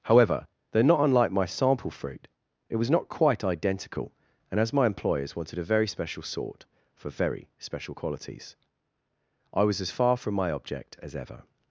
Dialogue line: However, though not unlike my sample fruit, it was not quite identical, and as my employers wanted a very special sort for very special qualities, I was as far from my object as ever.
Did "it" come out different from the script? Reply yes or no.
no